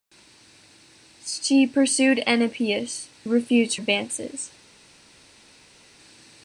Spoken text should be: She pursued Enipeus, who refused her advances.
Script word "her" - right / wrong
wrong